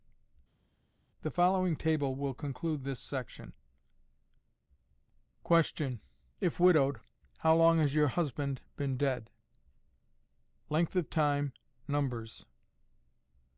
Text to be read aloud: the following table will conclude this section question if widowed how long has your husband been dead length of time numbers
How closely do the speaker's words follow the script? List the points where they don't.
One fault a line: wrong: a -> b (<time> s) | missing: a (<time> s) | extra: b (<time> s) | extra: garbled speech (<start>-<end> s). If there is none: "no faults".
no faults